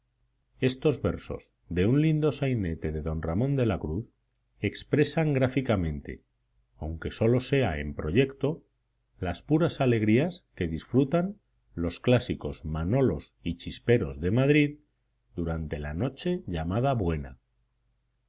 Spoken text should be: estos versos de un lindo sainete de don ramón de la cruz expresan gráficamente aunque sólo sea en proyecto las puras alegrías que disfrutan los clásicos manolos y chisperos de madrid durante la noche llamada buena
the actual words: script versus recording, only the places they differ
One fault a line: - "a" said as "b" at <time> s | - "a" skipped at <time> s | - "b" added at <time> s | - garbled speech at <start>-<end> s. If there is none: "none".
none